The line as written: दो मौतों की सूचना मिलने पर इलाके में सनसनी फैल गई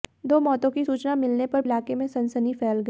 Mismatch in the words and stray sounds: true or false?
false